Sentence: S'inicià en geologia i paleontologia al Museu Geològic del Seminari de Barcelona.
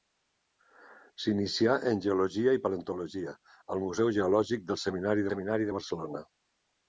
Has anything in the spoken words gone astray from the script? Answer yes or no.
yes